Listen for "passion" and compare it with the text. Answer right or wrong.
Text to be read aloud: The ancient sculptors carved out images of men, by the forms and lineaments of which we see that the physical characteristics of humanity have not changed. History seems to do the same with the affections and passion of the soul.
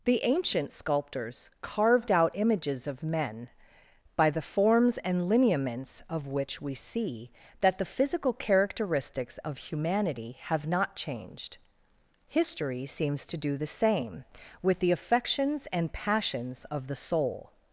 wrong